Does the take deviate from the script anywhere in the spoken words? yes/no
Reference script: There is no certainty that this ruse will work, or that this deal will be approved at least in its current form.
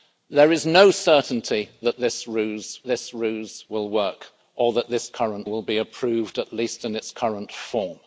yes